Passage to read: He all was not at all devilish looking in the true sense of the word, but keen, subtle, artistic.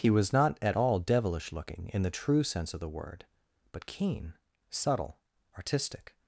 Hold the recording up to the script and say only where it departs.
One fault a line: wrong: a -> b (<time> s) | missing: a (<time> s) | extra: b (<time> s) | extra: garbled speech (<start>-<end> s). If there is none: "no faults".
missing: all (0.1 s)